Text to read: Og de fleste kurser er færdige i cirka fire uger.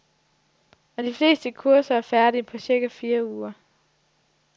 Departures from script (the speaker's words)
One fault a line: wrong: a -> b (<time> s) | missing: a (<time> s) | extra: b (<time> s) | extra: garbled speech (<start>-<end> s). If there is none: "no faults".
wrong: i -> på (2.4 s)